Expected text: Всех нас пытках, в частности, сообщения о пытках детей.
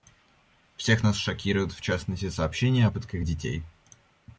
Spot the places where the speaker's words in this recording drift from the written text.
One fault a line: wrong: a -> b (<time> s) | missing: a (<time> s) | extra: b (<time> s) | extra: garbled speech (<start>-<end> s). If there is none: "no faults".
wrong: пытках -> шокируют (1.2 s)